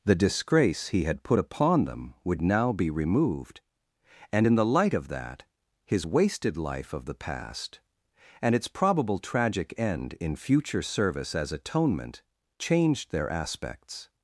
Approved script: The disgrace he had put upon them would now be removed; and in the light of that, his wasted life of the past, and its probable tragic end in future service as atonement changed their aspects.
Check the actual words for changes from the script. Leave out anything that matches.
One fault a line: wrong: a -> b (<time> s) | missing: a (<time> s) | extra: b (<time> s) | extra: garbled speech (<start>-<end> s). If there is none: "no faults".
no faults